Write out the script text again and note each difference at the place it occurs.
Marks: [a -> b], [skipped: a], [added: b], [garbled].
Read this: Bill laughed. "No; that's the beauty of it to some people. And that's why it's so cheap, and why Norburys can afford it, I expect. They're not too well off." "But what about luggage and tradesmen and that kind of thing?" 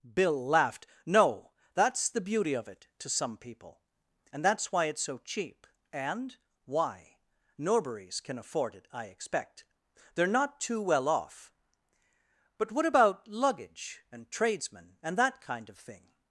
Bill laughed. "No; that's the beauty of it to some people. And that's why it's so cheap, and why Norburys can afford it, I expect. They're not too well off." "But what about luggage and tradesmen and that kind of thing?"